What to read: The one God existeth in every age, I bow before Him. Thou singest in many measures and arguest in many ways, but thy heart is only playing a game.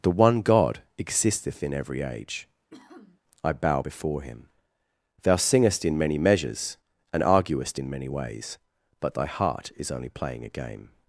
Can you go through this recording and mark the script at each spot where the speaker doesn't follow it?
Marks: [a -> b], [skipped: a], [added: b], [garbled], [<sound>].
The one God existeth in every age, [sniff] I bow before Him. Thou singest in many measures and arguest in many ways, but thy heart is only playing a game.